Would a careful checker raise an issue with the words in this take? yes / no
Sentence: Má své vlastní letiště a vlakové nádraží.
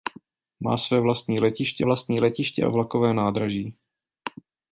yes